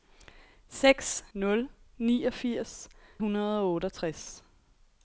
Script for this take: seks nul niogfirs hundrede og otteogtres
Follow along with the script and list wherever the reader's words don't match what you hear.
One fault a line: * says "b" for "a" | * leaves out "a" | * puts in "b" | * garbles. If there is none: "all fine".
all fine